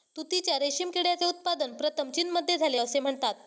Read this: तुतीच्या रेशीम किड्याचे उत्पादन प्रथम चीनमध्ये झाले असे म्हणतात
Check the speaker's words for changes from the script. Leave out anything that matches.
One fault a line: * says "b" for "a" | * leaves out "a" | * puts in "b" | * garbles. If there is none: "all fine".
all fine